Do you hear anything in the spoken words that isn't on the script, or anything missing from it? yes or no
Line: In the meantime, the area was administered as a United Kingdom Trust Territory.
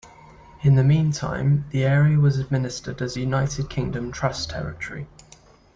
no